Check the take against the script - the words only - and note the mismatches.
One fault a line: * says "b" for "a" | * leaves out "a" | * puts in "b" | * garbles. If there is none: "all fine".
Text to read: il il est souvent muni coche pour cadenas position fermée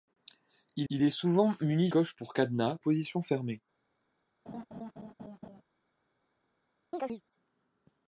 all fine